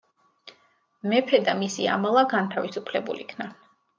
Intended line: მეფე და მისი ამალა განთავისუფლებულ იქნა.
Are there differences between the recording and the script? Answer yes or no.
no